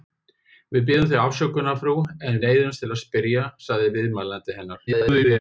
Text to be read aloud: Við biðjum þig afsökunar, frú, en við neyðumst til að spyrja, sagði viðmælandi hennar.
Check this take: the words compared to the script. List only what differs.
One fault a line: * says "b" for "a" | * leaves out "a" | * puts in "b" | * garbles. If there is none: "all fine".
* leaves out "við"
* garbles